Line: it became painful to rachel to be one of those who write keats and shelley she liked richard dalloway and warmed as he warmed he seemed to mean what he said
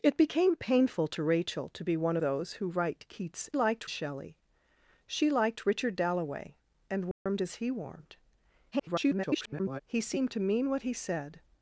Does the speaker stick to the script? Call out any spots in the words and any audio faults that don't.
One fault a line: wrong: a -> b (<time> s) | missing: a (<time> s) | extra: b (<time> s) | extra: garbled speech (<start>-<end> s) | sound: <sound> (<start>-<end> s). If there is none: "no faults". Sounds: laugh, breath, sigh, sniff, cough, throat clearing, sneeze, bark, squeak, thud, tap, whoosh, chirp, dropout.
missing: of (2.2 s)
wrong: and -> liked (3.5 s)
sound: dropout (7.1-7.3 s)
extra: garbled speech (8.7-9.8 s)